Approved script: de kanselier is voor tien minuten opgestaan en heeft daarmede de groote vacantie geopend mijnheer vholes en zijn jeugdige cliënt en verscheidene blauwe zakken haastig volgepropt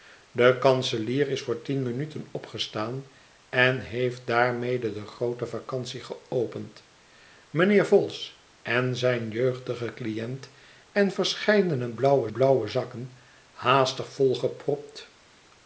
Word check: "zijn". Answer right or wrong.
right